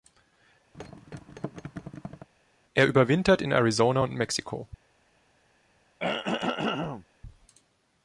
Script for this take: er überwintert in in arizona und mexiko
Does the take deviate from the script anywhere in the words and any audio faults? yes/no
yes